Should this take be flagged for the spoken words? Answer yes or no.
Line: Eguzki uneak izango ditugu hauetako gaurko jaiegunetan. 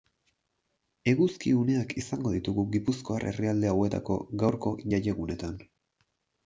yes